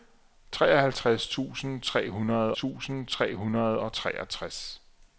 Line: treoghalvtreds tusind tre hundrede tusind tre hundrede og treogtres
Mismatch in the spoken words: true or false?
false